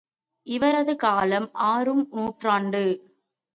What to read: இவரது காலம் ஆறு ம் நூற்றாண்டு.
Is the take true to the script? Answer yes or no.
yes